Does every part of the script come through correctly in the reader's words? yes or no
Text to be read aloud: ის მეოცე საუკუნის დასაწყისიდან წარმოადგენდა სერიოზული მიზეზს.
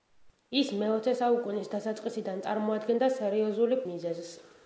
yes